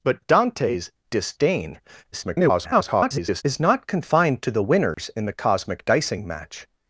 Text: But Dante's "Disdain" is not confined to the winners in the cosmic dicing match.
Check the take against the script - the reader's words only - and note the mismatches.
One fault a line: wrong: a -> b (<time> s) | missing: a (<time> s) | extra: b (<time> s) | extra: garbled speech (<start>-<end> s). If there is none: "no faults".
extra: garbled speech (2.1-3.4 s)